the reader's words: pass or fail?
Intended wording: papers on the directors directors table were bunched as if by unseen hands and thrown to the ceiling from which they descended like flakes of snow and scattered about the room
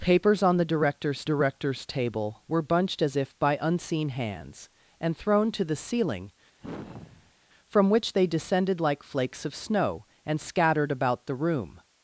pass